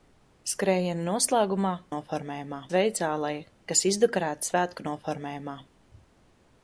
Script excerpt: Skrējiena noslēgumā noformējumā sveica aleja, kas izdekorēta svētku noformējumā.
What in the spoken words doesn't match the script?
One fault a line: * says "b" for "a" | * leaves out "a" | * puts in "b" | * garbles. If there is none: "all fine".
all fine